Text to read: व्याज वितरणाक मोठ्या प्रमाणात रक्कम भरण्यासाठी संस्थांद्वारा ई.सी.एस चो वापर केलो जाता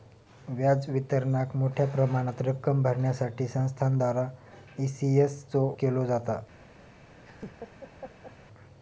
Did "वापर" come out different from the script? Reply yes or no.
yes